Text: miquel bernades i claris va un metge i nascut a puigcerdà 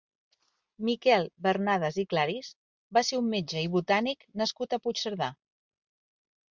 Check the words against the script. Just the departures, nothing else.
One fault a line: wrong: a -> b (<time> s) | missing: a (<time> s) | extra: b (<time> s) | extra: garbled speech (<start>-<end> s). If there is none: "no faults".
extra: ser (3.1 s)
extra: botànic (3.8 s)